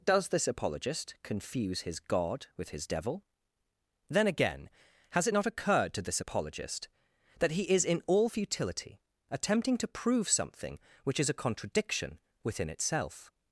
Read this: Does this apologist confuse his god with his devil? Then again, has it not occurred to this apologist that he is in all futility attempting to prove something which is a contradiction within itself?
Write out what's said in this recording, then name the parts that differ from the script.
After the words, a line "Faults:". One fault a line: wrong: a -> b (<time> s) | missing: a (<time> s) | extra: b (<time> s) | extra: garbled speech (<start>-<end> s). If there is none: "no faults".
Does this apologist confuse his god with his devil? Then again, has it not occurred to this apologist that he is in all futility attempting to prove something which is a contradiction within itself?
Faults:
no faults